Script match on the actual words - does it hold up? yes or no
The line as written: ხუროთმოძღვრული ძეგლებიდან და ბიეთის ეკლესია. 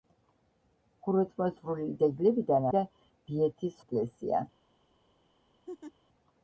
yes